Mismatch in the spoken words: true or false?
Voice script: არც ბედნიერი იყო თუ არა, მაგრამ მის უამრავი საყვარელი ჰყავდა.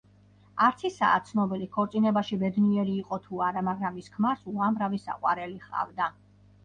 true